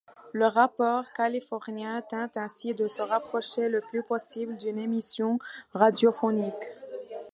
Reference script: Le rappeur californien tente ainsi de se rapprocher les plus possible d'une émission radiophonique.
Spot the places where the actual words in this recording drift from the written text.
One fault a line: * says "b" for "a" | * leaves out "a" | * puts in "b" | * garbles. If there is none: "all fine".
* says "le" for "les"